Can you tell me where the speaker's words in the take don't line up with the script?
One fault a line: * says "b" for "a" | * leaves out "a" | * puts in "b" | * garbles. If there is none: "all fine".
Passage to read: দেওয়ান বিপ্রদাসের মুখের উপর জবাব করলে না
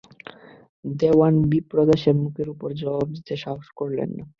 * puts in "দিতে সাহস"